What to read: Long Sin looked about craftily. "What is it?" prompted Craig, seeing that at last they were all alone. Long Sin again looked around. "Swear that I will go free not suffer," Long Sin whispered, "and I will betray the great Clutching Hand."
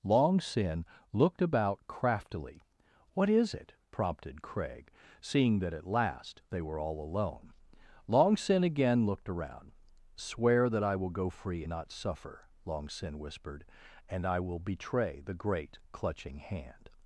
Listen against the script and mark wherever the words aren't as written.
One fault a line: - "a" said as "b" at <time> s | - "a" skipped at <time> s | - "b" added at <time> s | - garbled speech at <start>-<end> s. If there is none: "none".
none